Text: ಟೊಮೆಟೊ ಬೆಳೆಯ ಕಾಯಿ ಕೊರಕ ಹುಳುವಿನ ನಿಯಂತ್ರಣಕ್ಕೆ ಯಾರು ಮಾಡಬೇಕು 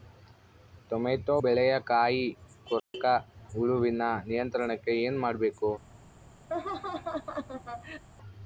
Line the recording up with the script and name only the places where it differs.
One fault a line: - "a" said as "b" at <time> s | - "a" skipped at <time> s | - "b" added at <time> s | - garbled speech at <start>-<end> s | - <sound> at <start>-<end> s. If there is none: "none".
- dropout at 2.8-2.9 s
- "ಯಾರು" said as "ಏನು" at 5.0 s
- laugh at 6.5-8.0 s